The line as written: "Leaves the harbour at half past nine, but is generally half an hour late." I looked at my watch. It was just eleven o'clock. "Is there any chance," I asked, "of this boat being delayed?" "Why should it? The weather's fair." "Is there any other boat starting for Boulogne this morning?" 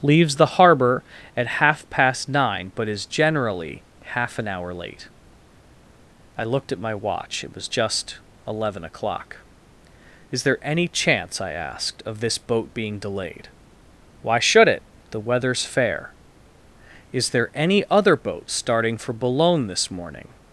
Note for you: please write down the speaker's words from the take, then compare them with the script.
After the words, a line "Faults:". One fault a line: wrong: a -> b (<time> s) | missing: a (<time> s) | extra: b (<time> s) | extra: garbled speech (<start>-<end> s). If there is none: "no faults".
"Leaves the harbour at half past nine, but is generally half an hour late." I looked at my watch. It was just eleven o'clock. "Is there any chance," I asked, "of this boat being delayed?" "Why should it? The weather's fair." "Is there any other boat starting for Boulogne this morning?"
Faults:
no faults